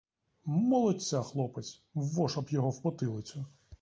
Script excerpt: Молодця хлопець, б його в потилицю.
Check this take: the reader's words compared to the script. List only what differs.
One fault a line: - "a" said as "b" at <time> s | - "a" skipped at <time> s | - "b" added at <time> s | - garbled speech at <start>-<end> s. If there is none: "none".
- "воша" added at 1.9 s